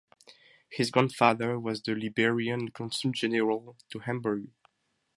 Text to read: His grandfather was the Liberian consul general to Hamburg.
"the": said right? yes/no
yes